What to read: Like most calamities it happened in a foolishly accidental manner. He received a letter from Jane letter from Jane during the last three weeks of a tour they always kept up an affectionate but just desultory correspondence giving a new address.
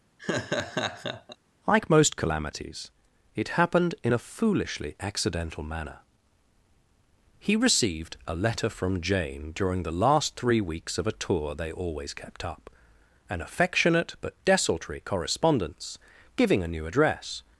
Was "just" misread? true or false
true